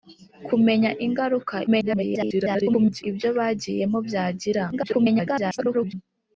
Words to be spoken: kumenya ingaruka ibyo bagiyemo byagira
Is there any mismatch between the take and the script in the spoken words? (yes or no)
yes